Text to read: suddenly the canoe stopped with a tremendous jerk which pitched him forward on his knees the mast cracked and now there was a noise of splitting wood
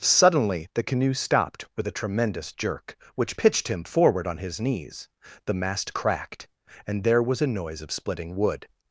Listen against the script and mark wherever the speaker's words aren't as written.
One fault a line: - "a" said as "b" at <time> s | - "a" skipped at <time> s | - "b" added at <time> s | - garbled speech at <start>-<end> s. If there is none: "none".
- "now" skipped at 7.0 s